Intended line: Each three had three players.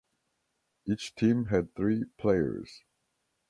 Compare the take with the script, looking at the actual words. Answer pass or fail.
fail